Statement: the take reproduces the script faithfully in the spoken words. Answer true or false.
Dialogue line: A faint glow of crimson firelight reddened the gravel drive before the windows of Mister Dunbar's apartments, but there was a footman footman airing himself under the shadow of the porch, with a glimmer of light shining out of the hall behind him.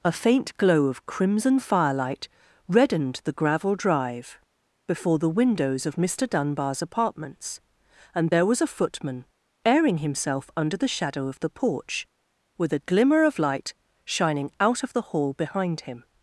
false